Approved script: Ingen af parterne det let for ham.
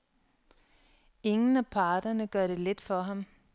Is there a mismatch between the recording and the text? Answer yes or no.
yes